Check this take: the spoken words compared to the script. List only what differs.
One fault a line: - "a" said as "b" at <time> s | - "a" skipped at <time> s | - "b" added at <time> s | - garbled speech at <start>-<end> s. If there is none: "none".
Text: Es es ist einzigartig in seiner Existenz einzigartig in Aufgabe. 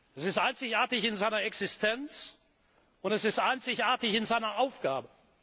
- "es" skipped at 0.2 s
- "und es ist" added at 3.0 s
- "seiner" added at 4.2 s